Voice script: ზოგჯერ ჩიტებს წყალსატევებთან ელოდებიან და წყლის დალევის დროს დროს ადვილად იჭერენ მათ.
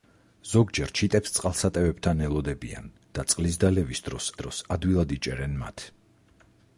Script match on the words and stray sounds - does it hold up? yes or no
yes